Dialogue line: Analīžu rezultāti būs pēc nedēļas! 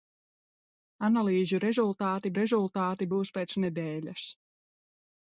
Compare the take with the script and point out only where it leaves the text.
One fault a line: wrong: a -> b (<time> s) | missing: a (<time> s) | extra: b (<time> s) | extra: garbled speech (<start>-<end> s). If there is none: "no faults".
extra: rezultāti (2.4 s)